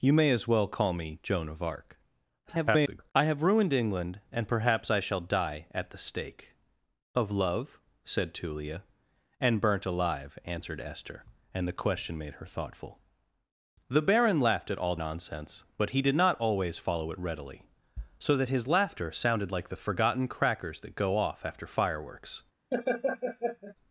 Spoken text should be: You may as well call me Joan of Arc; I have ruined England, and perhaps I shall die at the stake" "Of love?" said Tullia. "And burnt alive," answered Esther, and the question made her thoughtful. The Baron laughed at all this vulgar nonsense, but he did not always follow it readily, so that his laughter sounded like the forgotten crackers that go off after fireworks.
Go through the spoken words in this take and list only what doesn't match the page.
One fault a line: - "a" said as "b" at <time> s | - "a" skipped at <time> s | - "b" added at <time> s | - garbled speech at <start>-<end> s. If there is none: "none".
- garbled speech at 2.4-3.1 s
- "this vulgar" skipped at 15.0 s